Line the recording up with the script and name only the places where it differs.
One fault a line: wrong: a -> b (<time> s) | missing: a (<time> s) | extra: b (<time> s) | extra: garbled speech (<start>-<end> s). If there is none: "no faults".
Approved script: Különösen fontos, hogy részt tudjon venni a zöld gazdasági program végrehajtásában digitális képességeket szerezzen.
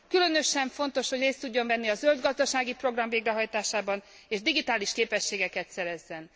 extra: és (4.3 s)